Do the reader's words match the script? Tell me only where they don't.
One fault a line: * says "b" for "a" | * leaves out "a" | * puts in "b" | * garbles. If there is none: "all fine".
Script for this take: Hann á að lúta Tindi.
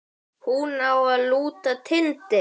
* says "Hún" for "Hann"